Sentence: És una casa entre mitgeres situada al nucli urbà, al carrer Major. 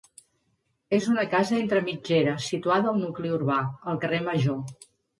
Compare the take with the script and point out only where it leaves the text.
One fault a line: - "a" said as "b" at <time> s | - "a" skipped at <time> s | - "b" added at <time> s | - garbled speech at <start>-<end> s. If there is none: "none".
none